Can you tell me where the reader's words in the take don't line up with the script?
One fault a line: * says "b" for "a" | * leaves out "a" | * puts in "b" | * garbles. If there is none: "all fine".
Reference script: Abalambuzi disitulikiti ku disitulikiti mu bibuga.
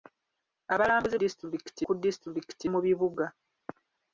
all fine